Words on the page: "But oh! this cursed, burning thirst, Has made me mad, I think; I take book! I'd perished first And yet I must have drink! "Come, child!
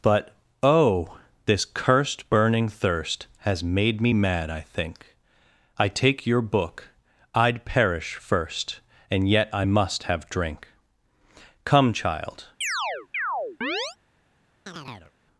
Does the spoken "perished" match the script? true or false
false